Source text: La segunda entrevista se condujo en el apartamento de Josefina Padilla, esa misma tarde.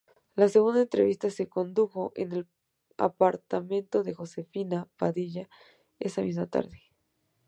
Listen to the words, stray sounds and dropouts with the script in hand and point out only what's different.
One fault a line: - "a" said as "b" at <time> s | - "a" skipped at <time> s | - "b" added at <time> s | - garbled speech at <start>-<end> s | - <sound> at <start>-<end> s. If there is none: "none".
none